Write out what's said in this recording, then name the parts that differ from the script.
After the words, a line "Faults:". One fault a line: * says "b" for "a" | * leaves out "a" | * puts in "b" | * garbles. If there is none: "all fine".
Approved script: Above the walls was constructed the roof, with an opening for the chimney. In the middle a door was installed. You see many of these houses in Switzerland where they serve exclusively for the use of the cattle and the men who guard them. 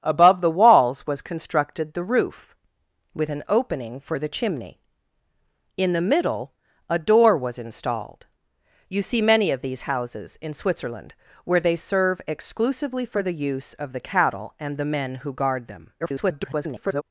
Above the walls was constructed the roof, with an opening for the chimney. In the middle a door was installed. You see many of these houses in Switzerland where they serve exclusively for the use of the cattle and the men who guard them. [garbled]
Faults:
* garbles